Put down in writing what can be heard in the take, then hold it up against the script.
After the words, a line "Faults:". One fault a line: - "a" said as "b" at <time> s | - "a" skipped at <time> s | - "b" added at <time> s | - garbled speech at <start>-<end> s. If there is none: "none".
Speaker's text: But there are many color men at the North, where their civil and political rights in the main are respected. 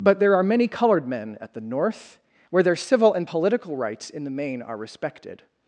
But there are many colored men at the North, where their civil and political rights in the main are respected.
Faults:
- "color" said as "colored" at 0.7 s